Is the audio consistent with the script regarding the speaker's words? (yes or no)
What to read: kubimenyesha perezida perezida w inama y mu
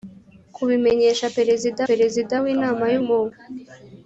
yes